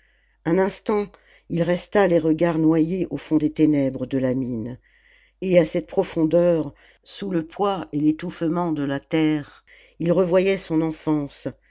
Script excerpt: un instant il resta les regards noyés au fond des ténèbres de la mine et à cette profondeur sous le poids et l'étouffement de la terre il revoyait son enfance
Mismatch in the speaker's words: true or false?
false